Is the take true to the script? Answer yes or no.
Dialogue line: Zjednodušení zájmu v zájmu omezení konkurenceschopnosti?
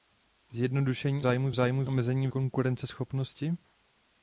yes